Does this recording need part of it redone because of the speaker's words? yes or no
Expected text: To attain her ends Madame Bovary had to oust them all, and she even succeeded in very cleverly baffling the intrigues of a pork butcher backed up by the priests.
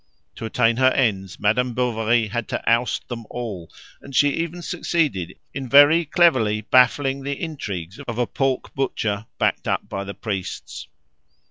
no